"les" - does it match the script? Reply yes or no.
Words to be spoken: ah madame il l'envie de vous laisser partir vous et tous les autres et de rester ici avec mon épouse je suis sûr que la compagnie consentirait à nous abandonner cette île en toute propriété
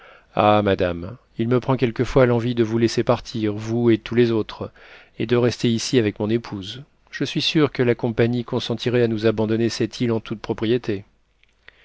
yes